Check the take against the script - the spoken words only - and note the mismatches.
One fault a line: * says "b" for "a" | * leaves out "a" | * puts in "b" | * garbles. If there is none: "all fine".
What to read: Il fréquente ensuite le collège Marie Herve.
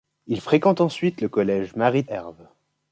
all fine